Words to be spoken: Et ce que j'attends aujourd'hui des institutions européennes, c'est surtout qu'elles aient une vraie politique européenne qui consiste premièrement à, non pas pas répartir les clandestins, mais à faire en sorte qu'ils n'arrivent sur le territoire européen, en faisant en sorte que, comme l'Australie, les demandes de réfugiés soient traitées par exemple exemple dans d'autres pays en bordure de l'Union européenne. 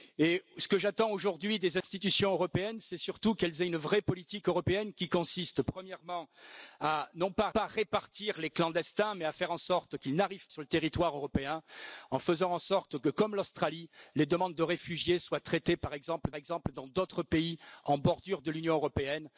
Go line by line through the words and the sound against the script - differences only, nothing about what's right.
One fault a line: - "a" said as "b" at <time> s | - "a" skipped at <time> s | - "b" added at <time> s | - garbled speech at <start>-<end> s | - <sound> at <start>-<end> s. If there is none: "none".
- dropout at 1.8-1.8 s